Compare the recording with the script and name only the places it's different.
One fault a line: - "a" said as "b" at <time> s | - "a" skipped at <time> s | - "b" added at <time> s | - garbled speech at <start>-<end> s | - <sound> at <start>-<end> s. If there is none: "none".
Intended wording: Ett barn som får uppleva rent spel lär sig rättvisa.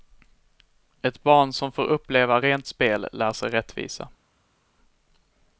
none